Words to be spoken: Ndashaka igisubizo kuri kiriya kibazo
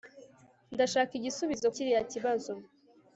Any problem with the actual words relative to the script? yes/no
yes